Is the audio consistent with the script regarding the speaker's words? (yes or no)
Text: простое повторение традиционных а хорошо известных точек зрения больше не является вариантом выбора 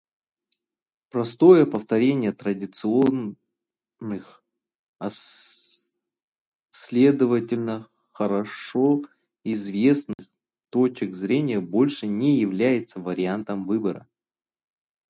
no